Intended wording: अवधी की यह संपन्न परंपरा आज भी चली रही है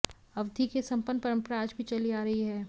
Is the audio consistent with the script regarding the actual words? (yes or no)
no